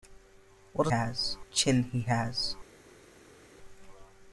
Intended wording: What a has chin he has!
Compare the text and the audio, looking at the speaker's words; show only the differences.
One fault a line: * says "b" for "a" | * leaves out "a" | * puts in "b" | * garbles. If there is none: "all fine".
all fine